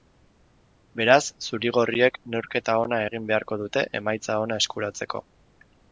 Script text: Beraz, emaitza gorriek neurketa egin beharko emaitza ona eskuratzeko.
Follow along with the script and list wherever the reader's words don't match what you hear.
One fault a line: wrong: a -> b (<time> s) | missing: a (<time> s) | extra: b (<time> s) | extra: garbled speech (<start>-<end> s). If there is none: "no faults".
wrong: emaitza -> zuri (1.5 s)
extra: ona (2.9 s)
extra: dute (3.6 s)